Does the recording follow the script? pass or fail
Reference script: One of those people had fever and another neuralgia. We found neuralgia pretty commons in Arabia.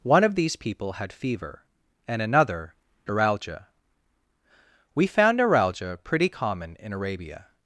fail